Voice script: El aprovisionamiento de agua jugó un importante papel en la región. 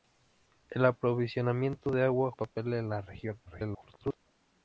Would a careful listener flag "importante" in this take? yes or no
yes